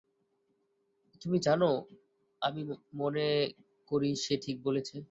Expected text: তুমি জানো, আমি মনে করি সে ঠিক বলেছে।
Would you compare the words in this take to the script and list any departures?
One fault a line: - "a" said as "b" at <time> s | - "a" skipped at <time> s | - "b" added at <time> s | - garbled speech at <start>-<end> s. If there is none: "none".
none